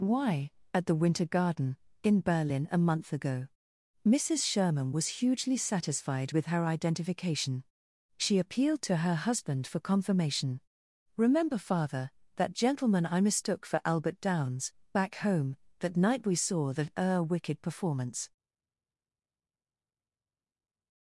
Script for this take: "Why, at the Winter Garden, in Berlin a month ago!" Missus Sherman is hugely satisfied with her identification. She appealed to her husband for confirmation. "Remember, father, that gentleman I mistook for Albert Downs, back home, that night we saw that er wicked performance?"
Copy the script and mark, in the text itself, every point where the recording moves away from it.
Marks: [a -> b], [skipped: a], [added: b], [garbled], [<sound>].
"Why, at the Winter Garden, in Berlin a month ago!" Missus Sherman [is -> was] hugely satisfied with her identification. She appealed to her husband for confirmation. "Remember, father, that gentleman I mistook for Albert Downs, back home, that night we saw that er wicked performance?"